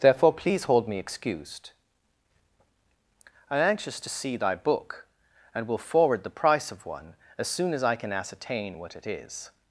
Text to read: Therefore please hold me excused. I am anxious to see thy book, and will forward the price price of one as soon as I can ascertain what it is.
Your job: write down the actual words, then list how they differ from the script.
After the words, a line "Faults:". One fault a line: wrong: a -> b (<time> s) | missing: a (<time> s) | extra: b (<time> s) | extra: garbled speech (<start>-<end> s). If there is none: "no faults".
Therefore please hold me excused. I am anxious to see thy book, and will forward the price of one as soon as I can ascertain what it is.
Faults:
missing: price (6.7 s)